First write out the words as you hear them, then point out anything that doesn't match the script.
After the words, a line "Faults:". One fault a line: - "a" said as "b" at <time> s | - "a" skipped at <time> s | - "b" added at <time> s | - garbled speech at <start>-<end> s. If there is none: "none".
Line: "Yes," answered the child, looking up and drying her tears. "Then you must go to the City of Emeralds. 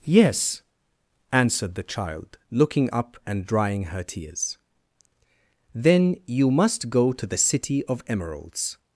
"Yes," answered the child, looking up and drying her tears. "Then you must go to the City of Emeralds.
Faults:
none